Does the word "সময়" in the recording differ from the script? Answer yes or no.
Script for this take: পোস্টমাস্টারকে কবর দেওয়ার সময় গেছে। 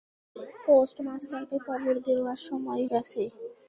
no